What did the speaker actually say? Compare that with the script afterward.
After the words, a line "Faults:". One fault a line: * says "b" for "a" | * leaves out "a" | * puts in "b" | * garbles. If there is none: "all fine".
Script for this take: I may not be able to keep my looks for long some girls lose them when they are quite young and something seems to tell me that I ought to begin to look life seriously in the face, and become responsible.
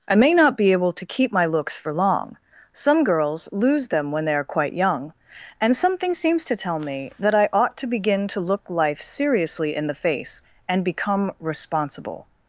I may not be able to keep my looks for long some girls lose them when they are quite young and something seems to tell me that I ought to begin to look life seriously in the face, and become responsible.
Faults:
all fine